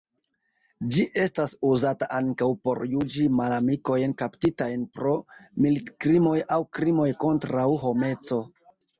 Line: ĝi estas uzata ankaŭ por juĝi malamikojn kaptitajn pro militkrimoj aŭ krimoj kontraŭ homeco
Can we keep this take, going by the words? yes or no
yes